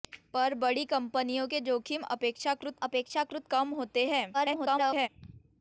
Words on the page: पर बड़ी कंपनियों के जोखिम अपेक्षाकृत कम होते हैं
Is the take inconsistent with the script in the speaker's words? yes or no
yes